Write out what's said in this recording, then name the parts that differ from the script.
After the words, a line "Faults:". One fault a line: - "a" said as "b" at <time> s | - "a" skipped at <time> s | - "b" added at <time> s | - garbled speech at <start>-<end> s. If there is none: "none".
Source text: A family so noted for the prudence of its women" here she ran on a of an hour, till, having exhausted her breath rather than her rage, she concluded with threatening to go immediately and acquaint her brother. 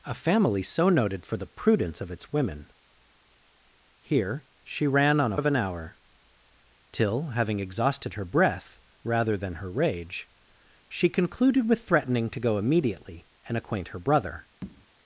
A family so noted for the prudence of its women" here she ran on a of an hour, till, having exhausted her breath rather than her rage, she concluded with threatening to go immediately and acquaint her brother.
Faults:
none